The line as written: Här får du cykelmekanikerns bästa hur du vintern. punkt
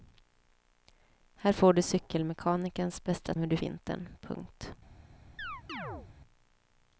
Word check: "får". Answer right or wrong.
right